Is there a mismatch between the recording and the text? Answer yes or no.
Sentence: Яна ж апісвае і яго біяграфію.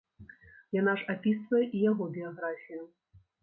no